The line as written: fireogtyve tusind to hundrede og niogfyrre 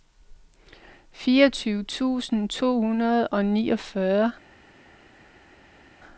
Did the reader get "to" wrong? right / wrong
right